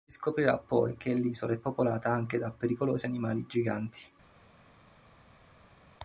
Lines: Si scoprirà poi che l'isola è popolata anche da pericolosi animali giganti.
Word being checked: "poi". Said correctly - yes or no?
yes